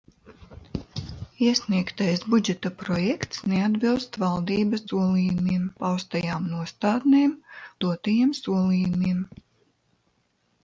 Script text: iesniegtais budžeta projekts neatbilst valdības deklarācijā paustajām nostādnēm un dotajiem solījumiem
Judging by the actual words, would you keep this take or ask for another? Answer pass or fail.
fail